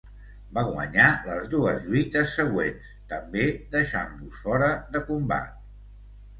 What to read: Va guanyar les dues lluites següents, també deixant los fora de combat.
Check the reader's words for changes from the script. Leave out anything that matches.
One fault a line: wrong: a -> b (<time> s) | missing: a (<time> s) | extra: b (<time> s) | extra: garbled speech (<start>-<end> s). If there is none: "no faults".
no faults